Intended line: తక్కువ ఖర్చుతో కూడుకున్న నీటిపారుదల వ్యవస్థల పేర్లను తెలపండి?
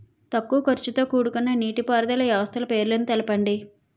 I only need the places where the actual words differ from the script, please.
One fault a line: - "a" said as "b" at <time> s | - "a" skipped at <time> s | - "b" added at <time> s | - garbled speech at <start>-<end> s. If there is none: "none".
none